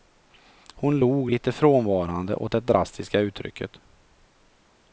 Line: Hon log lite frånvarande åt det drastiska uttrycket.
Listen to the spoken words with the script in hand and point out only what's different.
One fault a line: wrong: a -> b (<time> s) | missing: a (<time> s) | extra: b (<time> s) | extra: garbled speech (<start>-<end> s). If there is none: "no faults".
no faults